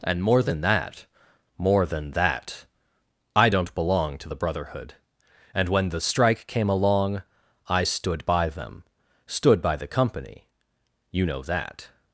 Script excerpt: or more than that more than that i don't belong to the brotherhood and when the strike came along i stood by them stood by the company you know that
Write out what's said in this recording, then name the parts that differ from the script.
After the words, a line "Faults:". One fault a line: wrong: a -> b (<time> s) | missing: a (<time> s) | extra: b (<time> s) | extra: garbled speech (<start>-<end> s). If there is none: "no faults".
and more than that more than that i don't belong to the brotherhood and when the strike came along i stood by them stood by the company you know that
Faults:
wrong: or -> and (0.0 s)